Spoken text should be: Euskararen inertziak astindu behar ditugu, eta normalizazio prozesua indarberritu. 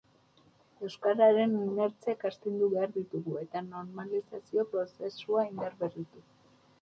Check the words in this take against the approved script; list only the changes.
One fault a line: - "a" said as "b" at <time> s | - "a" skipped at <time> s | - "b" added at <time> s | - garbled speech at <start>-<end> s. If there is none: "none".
none